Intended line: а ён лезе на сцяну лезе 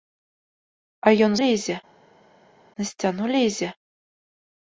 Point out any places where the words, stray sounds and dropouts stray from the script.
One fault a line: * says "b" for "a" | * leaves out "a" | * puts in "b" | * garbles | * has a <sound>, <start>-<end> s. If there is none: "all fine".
all fine